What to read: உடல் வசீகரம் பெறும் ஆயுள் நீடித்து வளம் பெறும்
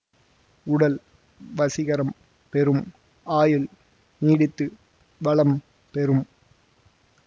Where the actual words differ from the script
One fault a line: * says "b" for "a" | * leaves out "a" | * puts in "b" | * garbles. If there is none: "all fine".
all fine